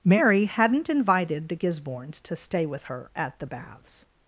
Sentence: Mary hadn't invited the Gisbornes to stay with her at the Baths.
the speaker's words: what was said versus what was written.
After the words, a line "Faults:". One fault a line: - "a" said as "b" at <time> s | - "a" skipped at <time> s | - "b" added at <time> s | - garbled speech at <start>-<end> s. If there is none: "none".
Mary hadn't invited the Gisbornes to stay with her at the Baths.
Faults:
none